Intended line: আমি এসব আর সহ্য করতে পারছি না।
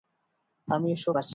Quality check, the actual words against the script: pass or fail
fail